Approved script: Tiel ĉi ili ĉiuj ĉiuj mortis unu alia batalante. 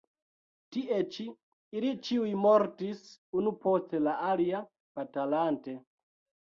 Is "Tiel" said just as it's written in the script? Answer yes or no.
no